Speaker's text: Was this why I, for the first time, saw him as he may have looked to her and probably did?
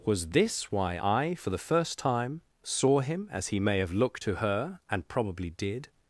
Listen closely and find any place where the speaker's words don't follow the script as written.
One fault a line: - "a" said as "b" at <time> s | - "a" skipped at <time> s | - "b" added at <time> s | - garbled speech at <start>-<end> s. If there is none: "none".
none